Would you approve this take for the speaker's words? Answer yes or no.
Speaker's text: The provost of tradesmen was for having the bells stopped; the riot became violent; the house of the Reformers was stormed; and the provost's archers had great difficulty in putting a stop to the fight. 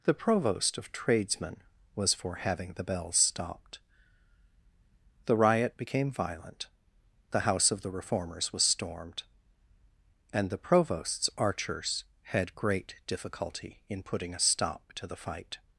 yes